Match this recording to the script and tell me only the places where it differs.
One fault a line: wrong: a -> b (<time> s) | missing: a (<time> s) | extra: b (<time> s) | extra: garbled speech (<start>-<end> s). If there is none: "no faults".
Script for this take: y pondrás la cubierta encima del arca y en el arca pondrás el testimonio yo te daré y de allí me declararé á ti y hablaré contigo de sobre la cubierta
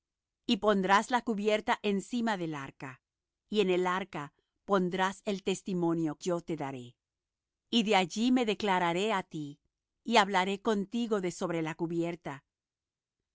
no faults